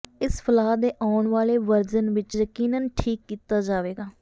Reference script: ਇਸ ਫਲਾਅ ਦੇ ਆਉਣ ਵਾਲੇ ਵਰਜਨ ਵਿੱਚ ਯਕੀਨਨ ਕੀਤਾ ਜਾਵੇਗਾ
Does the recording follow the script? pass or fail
fail